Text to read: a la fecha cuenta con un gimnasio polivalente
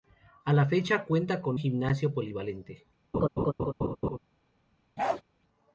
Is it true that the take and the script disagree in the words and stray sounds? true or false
true